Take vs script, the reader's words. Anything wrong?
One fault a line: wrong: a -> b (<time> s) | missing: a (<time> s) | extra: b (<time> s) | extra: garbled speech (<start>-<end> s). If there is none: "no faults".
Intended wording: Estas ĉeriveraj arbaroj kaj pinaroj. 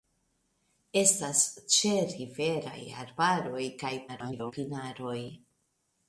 extra: garbled speech (4.1-4.5 s)